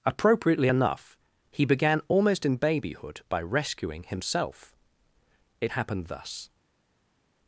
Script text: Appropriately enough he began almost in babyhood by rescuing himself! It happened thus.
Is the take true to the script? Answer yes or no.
yes